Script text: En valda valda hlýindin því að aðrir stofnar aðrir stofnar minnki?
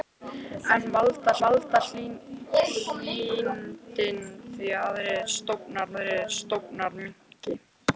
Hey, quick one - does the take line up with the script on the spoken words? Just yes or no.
yes